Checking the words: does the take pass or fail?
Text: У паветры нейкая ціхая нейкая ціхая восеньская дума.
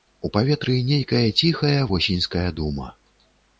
fail